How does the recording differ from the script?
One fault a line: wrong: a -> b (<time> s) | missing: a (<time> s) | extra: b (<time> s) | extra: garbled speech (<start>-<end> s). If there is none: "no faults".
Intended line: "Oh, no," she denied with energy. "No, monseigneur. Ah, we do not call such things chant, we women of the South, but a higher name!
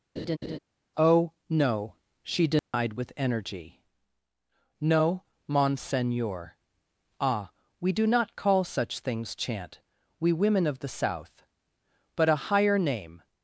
no faults